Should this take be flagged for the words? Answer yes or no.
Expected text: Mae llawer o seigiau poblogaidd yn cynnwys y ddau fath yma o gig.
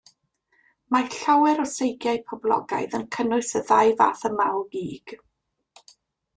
no